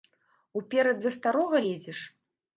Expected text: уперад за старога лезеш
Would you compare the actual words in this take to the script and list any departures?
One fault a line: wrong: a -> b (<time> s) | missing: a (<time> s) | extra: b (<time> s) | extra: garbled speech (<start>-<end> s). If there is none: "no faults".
no faults